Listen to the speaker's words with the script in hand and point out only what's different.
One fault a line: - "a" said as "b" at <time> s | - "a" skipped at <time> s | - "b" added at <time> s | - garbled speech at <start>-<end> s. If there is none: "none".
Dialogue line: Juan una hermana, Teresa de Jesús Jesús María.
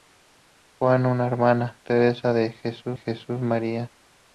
none